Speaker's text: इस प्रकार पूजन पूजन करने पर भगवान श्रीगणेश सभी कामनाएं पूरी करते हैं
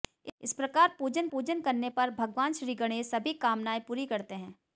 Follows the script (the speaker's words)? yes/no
yes